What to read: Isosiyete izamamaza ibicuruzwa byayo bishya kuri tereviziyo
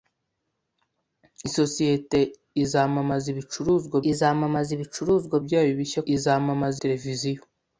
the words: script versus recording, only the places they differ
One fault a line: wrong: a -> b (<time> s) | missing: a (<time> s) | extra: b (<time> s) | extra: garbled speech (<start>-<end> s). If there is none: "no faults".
extra: izamamaza ibicuruzwa (4.1 s)
wrong: kuri -> izamamaza (6.1 s)